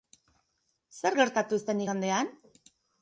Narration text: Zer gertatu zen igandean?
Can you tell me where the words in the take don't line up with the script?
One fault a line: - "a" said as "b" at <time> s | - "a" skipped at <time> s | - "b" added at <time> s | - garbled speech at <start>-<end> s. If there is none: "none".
none